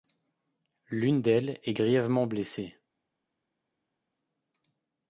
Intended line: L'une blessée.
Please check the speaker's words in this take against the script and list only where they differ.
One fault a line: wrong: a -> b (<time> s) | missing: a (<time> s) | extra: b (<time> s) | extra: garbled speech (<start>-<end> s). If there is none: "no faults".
extra: d'elles est grièvement (1.2 s)